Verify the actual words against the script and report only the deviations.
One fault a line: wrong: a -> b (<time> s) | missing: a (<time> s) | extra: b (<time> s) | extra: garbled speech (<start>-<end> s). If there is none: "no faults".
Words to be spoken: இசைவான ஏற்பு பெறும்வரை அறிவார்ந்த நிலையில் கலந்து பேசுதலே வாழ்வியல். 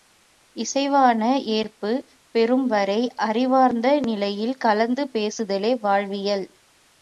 no faults